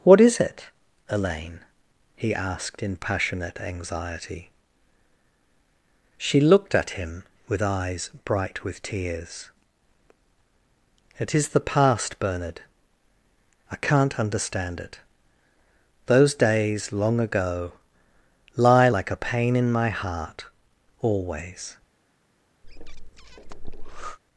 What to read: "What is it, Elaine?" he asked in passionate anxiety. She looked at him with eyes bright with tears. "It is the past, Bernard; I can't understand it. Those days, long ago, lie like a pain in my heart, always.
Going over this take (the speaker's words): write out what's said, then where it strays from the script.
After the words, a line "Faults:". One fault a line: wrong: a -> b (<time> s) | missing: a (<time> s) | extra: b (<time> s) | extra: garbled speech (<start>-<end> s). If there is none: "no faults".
"What is it, Elaine?" he asked in passionate anxiety. She looked at him with eyes bright with tears. "It is the past, Bernard; I can't understand it. Those days, long ago, lie like a pain in my heart, always.
Faults:
no faults